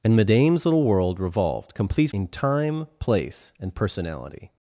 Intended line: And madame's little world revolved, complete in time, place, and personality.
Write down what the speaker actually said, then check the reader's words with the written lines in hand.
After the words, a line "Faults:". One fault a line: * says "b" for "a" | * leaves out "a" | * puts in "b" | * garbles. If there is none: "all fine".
And madame's little world revolved, complete in time, place, and personality.
Faults:
all fine